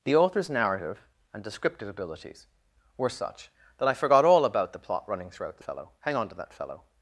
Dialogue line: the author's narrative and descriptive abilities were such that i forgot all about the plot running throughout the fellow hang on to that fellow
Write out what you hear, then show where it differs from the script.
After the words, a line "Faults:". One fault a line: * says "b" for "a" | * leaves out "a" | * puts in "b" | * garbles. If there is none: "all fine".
the author's narrative and descriptive abilities were such that i forgot all about the plot running throughout the fellow hang on to that fellow
Faults:
all fine